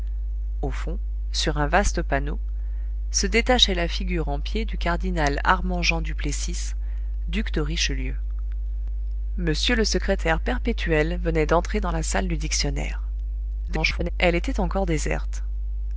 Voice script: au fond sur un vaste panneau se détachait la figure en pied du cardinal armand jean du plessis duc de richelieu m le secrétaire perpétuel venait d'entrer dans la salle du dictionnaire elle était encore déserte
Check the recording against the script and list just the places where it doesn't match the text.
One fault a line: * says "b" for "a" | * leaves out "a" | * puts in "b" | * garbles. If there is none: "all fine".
* garbles